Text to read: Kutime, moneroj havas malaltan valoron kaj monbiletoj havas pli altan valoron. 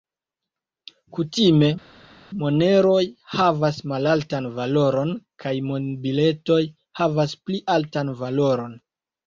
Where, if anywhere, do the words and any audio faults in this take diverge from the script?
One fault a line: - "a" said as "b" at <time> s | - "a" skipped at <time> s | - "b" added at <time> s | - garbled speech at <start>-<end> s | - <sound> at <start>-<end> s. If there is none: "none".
none